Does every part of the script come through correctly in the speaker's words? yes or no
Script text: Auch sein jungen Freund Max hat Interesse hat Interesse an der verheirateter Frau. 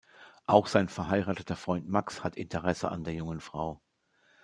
no